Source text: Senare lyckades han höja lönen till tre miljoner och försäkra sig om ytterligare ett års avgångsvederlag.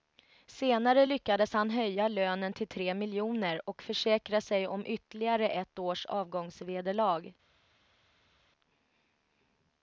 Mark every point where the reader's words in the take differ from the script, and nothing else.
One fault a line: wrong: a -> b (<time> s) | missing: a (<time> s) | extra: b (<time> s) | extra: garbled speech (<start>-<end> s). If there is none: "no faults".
no faults